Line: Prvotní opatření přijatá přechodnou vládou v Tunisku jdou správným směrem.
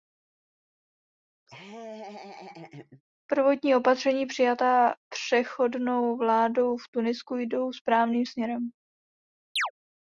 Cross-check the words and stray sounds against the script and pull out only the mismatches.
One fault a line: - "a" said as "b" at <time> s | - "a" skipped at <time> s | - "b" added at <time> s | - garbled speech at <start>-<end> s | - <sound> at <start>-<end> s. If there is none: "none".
- laugh at 1.5-3.0 s
- chirp at 9.6-9.7 s